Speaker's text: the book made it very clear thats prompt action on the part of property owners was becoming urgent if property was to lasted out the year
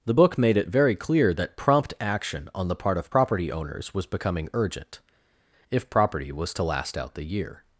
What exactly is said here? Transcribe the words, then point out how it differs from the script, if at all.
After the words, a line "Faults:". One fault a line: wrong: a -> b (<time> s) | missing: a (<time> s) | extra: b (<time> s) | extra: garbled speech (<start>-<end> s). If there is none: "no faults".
the book made it very clear that prompt action on the part of property owners was becoming urgent if property was to last out the year
Faults:
wrong: thats -> that (1.3 s)
wrong: lasted -> last (6.6 s)